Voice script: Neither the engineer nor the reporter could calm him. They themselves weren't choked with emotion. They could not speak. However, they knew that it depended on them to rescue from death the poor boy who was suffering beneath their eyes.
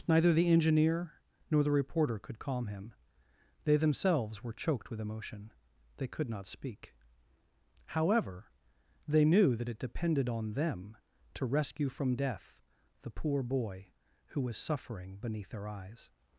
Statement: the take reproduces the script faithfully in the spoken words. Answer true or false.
false